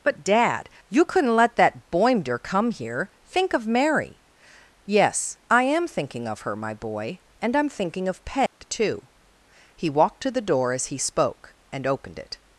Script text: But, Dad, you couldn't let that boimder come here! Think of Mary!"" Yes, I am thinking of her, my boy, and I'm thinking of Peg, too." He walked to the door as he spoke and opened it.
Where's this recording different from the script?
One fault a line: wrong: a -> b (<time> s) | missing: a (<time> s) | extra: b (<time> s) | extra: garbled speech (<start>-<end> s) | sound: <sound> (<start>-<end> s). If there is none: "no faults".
sound: dropout (8.5-8.6 s)